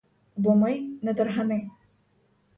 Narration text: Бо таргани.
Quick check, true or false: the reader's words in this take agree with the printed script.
false